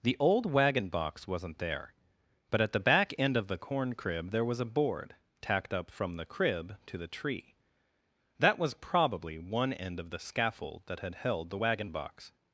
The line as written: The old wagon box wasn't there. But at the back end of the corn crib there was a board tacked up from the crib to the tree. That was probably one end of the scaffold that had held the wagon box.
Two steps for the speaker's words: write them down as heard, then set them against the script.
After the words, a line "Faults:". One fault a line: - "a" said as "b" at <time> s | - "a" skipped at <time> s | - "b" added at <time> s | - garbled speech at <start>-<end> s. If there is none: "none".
The old wagon box wasn't there. But at the back end of the corn crib there was a board tacked up from the crib to the tree. That was probably one end of the scaffold that had held the wagon box.
Faults:
none